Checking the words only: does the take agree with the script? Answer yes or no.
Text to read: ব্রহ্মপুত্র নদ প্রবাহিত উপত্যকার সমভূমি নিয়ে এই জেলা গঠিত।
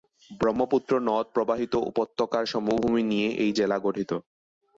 yes